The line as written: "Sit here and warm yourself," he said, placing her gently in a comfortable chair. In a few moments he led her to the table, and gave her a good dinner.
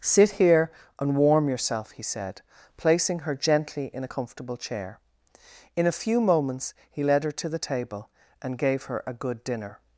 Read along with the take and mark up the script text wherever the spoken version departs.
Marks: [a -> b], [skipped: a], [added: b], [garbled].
"Sit here and warm yourself," he said, placing her gently in a comfortable chair. In a few moments he led her to the table, and gave her a good dinner.